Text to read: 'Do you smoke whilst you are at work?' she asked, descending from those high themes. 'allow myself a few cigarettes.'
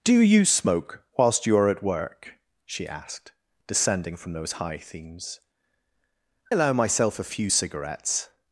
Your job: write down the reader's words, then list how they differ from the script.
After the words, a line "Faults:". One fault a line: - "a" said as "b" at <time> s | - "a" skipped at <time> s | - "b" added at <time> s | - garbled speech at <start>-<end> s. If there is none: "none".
'Do you smoke whilst you are at work?' she asked, descending from those high themes. 'allow myself a few cigarettes.'
Faults:
none